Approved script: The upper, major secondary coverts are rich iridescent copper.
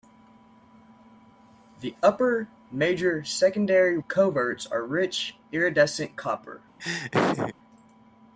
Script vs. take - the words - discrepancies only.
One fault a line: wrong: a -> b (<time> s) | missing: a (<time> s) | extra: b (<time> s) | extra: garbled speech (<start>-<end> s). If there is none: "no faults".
no faults